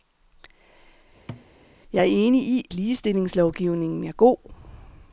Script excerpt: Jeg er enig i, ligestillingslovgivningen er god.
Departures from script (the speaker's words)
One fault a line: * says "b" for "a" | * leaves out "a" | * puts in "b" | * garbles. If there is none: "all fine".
all fine